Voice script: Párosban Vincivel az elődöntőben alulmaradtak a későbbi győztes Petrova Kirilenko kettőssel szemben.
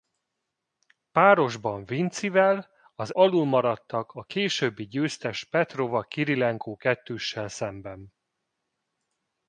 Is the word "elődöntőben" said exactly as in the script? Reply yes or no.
no